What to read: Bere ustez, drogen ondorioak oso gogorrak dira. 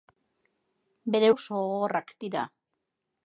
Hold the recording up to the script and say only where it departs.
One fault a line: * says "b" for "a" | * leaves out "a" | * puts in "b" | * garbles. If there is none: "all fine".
* leaves out "ustez drogen ondorioak"